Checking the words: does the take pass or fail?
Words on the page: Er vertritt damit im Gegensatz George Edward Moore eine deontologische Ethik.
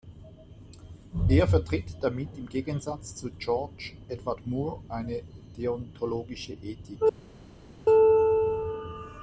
fail